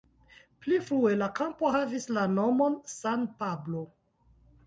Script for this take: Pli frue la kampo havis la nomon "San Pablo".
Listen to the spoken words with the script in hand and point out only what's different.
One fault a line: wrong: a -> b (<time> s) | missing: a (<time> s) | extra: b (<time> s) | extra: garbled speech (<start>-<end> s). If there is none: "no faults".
no faults